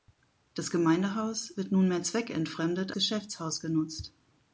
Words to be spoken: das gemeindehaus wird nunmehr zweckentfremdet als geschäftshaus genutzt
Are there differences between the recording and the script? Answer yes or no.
yes